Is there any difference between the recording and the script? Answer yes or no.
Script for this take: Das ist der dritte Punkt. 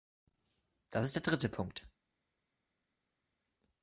no